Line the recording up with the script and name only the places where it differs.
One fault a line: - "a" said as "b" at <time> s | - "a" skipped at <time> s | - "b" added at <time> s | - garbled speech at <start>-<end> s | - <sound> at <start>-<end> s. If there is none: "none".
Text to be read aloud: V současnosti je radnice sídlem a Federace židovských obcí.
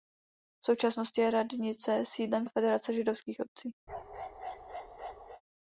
- bark at 3.9-5.4 s